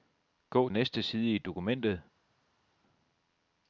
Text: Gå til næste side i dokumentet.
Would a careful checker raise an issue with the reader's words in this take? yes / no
yes